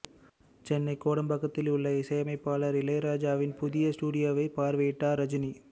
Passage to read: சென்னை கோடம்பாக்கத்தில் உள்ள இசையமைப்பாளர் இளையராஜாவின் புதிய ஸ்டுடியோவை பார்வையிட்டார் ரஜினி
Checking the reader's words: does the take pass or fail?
pass